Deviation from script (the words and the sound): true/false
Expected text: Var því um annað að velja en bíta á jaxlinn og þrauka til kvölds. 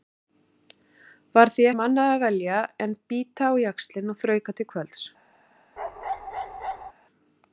true